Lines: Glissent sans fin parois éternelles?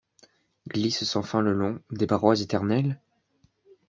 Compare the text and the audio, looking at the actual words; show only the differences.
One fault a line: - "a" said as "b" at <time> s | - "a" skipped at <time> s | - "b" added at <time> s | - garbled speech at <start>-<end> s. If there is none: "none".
- "le long des" added at 1.4 s